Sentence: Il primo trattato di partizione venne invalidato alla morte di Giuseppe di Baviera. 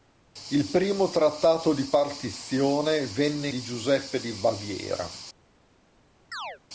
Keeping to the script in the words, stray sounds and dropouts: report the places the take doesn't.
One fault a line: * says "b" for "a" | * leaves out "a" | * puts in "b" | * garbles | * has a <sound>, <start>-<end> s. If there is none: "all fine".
* leaves out "invalidato alla morte"
* has a chirp, 6.3-6.6 s